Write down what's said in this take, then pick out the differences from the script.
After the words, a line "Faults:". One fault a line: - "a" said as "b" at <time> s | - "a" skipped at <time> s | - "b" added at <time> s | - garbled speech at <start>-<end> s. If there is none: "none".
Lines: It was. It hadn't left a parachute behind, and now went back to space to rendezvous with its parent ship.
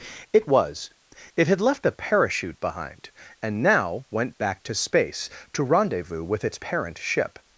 It was. It had left a parachute behind, and now went back to space to rendezvous with its parent ship.
Faults:
- "hadn't" said as "had" at 1.5 s